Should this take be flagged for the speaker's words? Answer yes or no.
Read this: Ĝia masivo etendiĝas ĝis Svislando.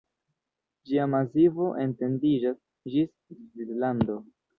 no